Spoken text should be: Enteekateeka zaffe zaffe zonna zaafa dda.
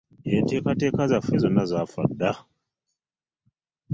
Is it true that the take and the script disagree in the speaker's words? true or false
true